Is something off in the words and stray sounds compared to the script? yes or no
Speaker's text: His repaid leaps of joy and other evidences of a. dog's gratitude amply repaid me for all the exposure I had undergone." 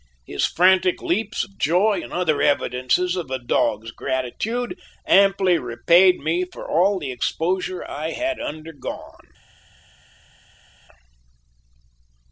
yes